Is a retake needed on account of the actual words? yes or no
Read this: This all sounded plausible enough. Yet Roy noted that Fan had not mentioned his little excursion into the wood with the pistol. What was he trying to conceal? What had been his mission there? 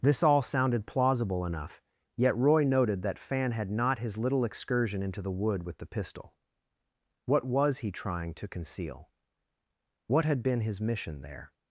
yes